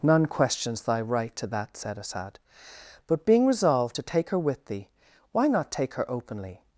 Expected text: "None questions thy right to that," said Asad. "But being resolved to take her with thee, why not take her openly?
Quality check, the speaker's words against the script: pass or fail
pass